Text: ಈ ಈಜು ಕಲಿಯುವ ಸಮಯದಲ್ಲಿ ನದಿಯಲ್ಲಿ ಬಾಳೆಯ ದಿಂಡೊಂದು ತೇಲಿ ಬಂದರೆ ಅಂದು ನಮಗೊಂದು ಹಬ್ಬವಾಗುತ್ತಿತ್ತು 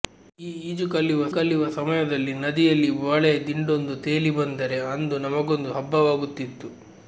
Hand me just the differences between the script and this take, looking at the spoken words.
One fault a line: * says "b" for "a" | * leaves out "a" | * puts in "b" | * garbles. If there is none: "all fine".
* puts in "ಕಲಿಯುವ"